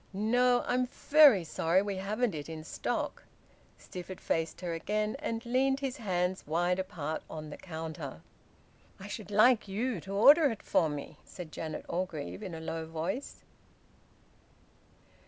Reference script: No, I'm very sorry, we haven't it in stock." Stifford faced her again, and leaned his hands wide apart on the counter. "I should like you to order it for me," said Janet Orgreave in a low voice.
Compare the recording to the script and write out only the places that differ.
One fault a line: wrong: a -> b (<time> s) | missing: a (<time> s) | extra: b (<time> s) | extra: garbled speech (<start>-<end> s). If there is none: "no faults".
no faults